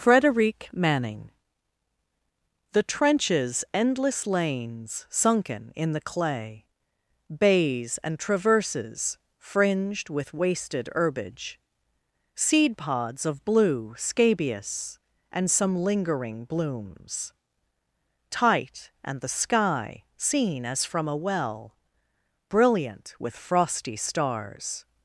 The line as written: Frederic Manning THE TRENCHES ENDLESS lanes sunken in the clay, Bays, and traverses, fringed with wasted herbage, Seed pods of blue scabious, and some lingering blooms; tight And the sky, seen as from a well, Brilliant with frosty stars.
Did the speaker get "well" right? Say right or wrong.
right